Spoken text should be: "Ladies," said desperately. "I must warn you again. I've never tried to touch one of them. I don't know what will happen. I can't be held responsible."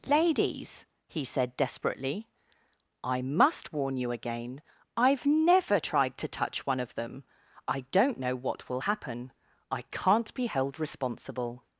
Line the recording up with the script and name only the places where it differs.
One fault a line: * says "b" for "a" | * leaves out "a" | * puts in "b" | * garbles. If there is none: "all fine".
* puts in "he"